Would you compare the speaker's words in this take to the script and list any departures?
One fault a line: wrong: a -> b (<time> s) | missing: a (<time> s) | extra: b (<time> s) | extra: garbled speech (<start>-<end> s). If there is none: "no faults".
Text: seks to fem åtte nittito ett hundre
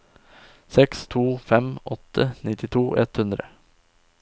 no faults